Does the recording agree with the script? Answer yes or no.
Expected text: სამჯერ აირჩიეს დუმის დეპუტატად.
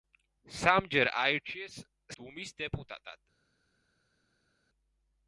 yes